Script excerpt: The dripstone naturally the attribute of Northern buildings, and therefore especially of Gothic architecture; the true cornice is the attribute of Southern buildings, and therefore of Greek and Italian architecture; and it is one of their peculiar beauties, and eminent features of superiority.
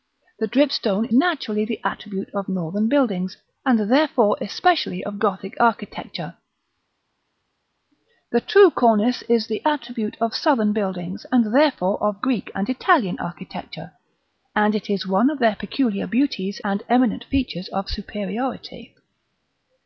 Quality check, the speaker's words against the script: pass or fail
pass